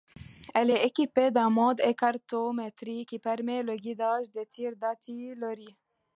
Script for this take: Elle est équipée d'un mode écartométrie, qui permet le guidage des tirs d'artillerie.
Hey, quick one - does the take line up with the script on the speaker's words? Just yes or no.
yes